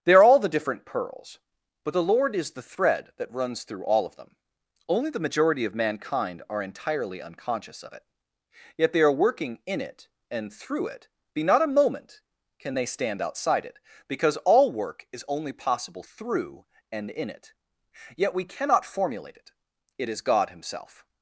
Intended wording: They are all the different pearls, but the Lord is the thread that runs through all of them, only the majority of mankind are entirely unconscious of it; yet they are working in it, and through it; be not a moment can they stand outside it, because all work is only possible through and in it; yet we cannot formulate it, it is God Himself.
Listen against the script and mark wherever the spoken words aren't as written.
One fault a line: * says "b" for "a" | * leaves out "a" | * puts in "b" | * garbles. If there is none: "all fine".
all fine